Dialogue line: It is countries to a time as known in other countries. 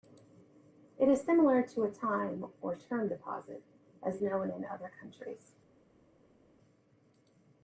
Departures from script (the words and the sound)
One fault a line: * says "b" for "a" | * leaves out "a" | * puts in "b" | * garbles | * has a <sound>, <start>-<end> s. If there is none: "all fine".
* says "similar" for "countries"
* puts in "or term deposit"